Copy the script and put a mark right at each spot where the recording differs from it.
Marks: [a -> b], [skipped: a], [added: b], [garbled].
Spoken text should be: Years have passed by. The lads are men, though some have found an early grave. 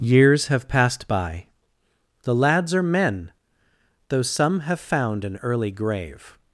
Years have passed by. The lads are men, though some have found an early grave.